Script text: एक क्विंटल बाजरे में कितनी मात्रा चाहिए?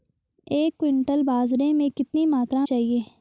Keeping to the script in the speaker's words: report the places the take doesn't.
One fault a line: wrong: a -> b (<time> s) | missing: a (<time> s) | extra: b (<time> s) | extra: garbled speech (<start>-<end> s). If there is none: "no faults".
no faults